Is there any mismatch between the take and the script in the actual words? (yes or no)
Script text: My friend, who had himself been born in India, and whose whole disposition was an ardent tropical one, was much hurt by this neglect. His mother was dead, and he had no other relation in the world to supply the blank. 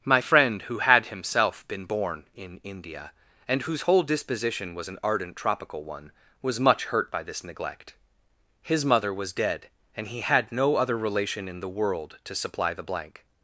no